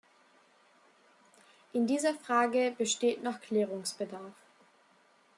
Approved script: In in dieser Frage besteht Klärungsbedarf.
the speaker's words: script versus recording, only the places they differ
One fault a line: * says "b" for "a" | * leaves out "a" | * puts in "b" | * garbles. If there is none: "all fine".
* leaves out "in"
* puts in "noch"